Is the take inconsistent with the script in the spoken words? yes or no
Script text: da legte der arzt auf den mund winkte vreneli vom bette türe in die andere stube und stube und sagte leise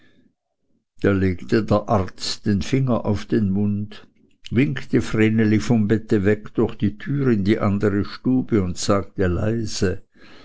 yes